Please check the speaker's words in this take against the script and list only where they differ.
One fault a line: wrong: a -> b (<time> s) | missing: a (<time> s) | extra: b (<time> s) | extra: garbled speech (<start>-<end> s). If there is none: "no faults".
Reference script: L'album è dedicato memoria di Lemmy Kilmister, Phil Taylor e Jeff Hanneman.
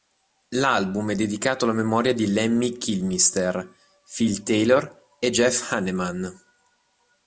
extra: alla (1.6 s)